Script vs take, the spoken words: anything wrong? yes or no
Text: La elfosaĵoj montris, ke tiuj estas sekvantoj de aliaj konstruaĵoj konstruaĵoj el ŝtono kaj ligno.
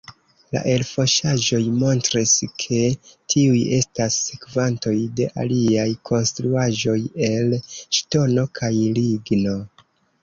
yes